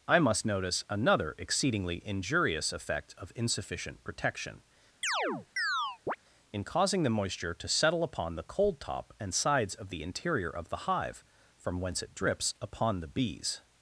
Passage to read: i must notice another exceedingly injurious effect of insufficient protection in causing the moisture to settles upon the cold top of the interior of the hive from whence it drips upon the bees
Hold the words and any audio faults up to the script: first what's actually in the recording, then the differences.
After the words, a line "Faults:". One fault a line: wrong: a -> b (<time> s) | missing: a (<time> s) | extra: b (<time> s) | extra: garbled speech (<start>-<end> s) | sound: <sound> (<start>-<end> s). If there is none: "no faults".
i must notice another exceedingly injurious effect of insufficient protection in causing the moisture to settle upon the cold top and sides of the interior of the hive from whence it drips upon the bees
Faults:
sound: chirp (5.0-6.2 s)
wrong: settles -> settle (7.7 s)
extra: and sides (9.2 s)